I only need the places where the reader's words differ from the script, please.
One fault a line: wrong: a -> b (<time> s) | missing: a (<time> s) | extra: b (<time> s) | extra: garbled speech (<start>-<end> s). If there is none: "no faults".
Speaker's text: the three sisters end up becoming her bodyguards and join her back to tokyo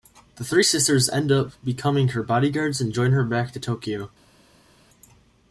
no faults